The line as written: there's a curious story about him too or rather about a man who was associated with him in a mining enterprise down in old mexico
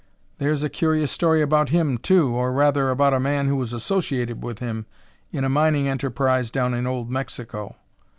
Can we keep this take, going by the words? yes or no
yes